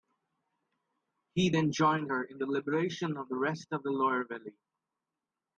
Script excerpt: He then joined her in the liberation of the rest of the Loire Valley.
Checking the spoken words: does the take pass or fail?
pass